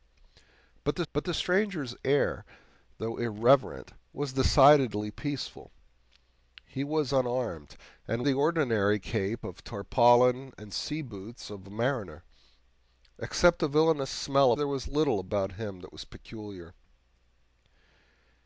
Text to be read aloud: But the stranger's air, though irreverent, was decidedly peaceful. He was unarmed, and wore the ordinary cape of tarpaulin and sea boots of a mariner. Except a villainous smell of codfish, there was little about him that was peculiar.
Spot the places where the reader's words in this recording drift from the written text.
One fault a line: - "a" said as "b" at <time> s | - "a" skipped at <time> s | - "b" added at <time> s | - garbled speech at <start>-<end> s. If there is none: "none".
- "but the" added at 1.1 s
- "wore" skipped at 8.3 s
- "of codfish" skipped at 14.5 s